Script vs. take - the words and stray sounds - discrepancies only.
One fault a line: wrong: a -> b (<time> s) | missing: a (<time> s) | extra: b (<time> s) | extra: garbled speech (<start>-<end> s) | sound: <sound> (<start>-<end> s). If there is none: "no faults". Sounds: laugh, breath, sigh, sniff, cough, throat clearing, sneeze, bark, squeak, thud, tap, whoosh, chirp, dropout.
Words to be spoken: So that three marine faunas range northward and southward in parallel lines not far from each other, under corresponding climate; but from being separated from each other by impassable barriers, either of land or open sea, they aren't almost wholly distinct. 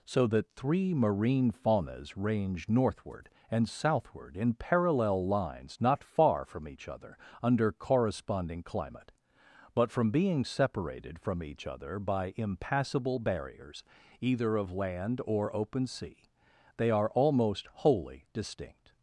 wrong: aren't -> are (16.9 s)